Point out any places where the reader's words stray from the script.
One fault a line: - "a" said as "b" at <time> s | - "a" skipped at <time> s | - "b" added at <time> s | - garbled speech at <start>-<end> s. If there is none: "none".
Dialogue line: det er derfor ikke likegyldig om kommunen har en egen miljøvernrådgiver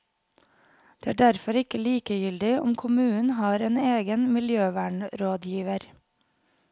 none